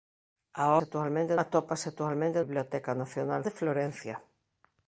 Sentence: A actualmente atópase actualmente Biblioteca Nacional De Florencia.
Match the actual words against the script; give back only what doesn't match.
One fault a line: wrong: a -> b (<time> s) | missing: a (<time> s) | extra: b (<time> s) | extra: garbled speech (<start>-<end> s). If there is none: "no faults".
no faults